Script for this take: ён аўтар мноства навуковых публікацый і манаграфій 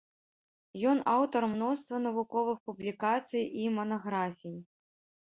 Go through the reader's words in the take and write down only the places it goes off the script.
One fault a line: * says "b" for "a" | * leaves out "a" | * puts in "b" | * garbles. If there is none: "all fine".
all fine